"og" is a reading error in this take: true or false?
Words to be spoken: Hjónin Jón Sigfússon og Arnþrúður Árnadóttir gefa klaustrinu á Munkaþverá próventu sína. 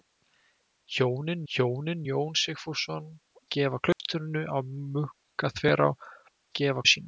true